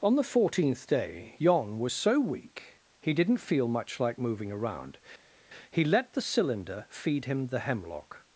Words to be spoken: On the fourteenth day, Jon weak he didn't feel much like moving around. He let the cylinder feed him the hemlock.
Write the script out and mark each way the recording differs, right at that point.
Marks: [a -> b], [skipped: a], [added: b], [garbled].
On the fourteenth day, Jon [added: was so] weak he didn't feel much like moving around. He let the cylinder feed him the hemlock.